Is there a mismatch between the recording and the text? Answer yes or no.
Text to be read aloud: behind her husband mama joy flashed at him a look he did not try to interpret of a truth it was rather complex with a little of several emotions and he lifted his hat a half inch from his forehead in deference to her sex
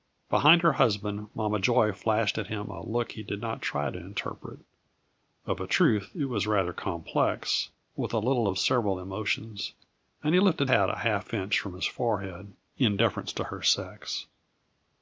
yes